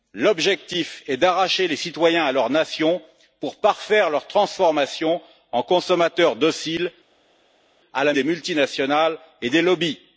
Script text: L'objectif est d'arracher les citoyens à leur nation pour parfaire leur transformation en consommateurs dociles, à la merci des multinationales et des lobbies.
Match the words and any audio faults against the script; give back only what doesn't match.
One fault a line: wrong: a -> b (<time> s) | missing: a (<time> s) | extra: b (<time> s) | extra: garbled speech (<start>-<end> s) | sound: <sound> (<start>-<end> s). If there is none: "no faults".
missing: merci (8.1 s)